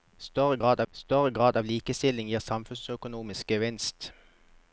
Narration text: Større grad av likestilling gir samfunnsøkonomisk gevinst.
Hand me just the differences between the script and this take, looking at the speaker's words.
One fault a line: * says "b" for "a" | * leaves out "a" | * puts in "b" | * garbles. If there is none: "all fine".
* puts in "større grad"